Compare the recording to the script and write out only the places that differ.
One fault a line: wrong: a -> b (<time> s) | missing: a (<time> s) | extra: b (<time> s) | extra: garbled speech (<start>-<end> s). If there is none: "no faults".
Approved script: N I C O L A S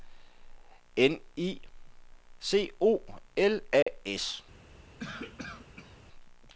no faults